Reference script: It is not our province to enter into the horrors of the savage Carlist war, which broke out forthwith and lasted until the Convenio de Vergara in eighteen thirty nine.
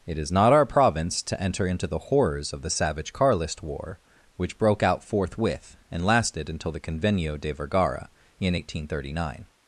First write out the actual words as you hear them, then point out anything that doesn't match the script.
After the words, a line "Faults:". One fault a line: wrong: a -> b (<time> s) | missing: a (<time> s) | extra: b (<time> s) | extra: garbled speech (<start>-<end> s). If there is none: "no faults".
It is not our province to enter into the horrors of the savage Carlist war, which broke out forthwith and lasted until the Convenio de Vergara in eighteen thirty nine.
Faults:
no faults